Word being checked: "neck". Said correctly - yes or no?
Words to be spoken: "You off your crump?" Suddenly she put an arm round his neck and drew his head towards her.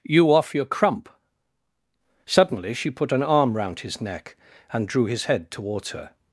yes